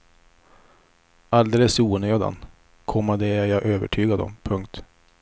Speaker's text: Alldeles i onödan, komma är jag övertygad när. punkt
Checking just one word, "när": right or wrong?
wrong